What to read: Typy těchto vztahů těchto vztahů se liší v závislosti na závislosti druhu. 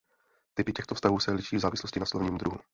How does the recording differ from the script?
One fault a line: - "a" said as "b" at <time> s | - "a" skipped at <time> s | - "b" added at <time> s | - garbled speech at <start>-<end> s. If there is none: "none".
- "těchto vztahů" skipped at 1.2 s
- "závislosti" said as "slovním" at 2.0 s